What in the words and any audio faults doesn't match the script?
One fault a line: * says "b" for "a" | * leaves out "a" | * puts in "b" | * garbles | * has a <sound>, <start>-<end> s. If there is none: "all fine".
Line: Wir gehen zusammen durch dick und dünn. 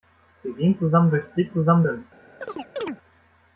* says "zusammen" for "und"
* has a chirp, 2.4-3.0 s